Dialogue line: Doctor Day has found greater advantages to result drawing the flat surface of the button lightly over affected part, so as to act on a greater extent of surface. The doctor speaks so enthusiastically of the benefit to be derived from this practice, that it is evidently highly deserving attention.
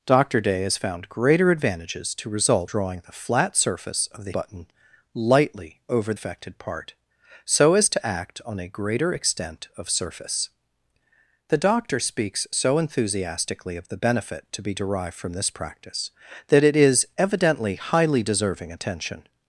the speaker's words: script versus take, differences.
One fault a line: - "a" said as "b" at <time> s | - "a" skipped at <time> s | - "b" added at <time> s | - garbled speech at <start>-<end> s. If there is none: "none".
none